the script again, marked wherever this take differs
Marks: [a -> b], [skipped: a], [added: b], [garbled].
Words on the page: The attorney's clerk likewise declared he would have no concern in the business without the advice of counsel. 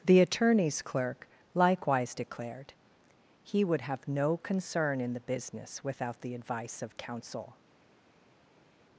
The attorney's clerk likewise declared he would have no concern in the business without the advice of counsel.